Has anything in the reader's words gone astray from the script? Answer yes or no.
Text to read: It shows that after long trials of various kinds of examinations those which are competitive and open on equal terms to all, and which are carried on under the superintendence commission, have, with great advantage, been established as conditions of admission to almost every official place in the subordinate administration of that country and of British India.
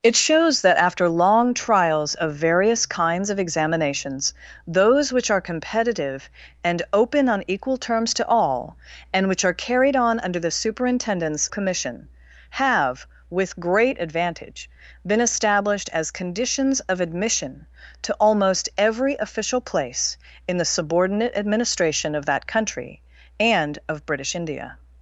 no